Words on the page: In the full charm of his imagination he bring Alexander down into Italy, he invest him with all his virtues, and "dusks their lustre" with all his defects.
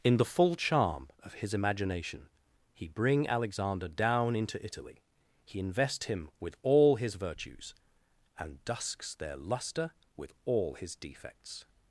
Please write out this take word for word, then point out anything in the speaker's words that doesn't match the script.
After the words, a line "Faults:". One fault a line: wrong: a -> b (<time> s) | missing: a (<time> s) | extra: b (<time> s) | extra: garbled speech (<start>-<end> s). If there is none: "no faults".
In the full charm of his imagination he bring Alexander down into Italy, he invest him with all his virtues, and "dusks their lustre" with all his defects.
Faults:
no faults